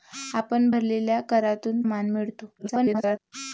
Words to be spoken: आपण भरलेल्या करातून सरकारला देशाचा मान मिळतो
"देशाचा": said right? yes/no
no